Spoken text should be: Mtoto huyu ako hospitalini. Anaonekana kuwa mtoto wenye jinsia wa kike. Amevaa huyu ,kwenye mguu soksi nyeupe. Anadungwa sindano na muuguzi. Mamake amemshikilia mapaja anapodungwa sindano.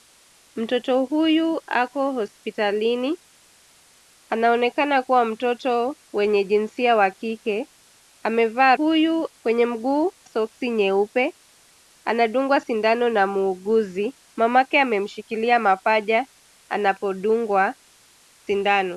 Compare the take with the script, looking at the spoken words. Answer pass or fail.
pass